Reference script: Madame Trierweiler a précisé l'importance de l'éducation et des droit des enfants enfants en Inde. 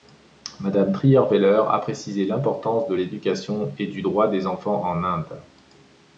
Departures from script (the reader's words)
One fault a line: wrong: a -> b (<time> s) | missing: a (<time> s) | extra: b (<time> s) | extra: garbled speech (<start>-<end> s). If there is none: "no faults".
wrong: des -> du (3.9 s)
missing: enfants (4.8 s)